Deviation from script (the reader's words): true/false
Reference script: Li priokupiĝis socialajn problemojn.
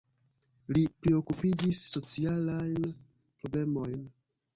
false